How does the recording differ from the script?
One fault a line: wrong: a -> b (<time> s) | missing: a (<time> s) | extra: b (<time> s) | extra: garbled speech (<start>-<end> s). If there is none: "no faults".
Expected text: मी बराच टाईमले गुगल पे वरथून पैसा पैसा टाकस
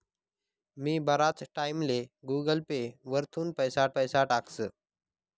no faults